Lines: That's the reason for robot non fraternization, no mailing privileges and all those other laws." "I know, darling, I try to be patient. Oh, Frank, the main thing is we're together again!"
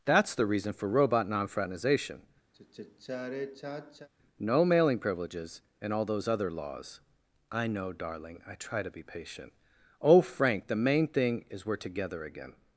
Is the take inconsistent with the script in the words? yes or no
no